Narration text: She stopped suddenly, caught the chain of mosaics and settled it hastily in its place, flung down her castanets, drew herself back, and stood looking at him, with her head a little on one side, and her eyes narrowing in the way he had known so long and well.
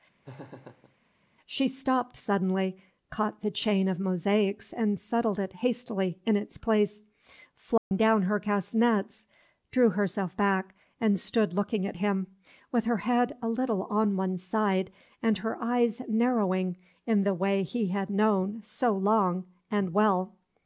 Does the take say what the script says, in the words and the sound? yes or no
no